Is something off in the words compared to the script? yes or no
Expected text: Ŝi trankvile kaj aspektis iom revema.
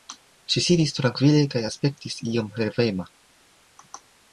yes